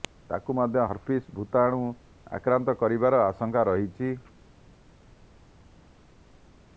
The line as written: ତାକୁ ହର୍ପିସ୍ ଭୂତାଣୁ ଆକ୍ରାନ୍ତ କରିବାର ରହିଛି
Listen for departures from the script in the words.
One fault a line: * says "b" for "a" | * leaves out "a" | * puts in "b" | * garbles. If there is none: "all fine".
* puts in "ମଧ୍ୟ"
* puts in "ଆଶଙ୍କା"